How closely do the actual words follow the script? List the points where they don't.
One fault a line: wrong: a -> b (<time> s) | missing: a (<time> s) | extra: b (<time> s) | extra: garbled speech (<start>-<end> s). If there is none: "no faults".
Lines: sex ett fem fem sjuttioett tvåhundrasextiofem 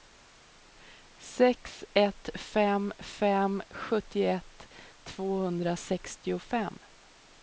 no faults